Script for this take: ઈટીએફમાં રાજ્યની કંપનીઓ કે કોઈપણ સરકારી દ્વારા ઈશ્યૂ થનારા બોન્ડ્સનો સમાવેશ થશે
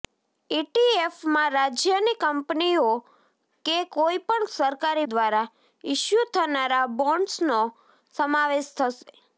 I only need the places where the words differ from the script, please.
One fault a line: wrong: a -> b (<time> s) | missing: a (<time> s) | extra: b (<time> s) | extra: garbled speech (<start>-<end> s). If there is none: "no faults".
no faults